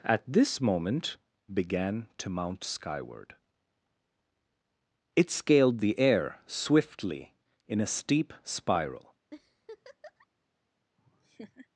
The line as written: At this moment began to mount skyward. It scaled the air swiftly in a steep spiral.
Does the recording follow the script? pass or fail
pass